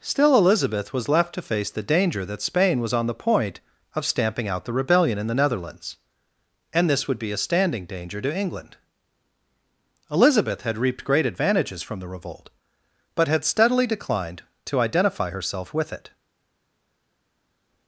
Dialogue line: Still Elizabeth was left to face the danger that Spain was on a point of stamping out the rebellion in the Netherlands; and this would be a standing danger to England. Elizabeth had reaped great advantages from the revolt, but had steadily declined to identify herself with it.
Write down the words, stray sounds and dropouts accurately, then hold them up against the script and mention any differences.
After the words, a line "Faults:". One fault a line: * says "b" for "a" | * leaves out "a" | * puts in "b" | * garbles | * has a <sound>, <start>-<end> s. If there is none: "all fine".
Still Elizabeth was left to face the danger that Spain was on the point of stamping out the rebellion in the Netherlands; and this would be a standing danger to England. Elizabeth had reaped great advantages from the revolt, but had steadily declined to identify herself with it.
Faults:
* says "the" for "a"